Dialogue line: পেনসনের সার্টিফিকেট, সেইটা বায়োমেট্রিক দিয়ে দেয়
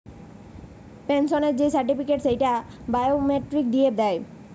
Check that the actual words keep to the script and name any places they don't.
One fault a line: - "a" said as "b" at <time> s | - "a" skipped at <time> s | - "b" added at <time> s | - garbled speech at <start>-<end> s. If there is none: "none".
- "যেই" added at 1.6 s